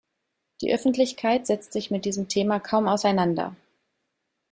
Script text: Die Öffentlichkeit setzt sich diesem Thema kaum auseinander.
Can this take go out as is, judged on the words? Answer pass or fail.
fail